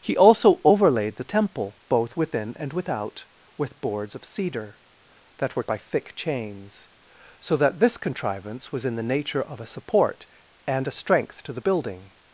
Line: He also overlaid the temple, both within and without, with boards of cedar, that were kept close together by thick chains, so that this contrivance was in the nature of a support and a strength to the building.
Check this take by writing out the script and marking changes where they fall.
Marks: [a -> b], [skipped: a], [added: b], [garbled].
He also overlaid the temple, both within and without, with boards of cedar, that were [skipped: kept close together] by thick chains, so that this contrivance was in the nature of a support and a strength to the building.